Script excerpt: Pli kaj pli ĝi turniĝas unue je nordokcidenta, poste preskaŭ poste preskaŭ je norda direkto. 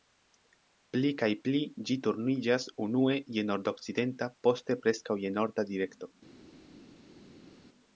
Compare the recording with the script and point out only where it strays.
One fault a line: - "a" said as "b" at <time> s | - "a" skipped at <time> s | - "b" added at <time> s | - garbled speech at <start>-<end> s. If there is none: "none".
- "poste preskaŭ" skipped at 5.2 s